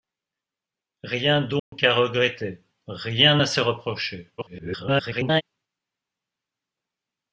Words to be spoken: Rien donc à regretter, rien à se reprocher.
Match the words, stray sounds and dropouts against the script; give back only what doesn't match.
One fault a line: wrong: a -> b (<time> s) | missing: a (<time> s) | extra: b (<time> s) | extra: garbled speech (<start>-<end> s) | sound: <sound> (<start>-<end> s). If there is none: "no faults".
sound: dropout (1.6-1.7 s)
extra: garbled speech (4.4-5.4 s)